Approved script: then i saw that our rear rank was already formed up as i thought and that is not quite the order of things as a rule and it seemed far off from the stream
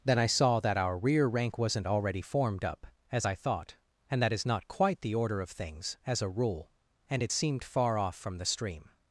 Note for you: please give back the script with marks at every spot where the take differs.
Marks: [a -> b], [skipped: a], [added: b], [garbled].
then i saw that our rear rank [was -> wasn't] already formed up as i thought and that is not quite the order of things as a rule and it seemed far off from the stream